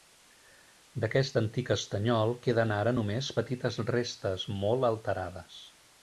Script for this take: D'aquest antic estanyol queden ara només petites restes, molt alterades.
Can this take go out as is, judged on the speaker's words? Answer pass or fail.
pass